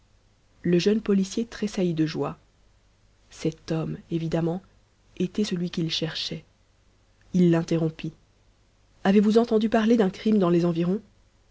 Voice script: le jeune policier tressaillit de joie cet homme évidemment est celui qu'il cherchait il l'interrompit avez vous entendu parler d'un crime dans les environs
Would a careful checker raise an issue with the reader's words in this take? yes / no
yes